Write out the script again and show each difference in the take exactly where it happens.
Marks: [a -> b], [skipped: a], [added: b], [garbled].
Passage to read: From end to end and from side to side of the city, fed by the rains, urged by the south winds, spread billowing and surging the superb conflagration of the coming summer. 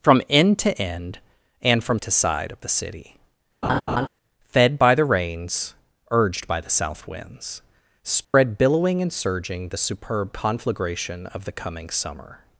From end to end and from [skipped: side] to side of the city, fed by the rains, urged by the south winds, spread billowing and surging the superb conflagration of the coming summer.